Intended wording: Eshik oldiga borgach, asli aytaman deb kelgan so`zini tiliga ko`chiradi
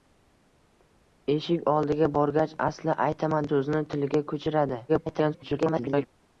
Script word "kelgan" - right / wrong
wrong